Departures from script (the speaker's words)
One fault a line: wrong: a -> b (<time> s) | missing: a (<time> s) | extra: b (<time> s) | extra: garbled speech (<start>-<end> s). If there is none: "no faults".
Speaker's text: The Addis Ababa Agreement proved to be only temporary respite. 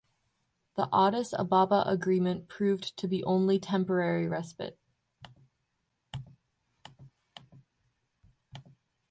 no faults